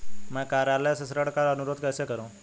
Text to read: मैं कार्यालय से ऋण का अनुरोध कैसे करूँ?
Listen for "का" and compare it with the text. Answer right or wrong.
right